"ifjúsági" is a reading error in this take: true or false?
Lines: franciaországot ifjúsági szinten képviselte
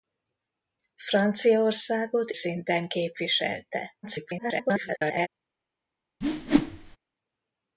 true